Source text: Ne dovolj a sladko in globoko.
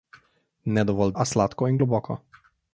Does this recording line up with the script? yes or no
yes